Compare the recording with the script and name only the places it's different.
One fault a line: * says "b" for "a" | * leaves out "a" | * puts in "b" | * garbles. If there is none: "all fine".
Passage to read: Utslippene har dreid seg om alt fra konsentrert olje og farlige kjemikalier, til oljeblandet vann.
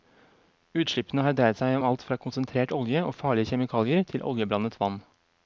all fine